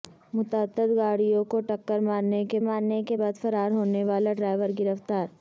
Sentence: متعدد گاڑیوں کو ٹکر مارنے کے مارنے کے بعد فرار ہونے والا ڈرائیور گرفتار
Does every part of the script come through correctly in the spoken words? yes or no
yes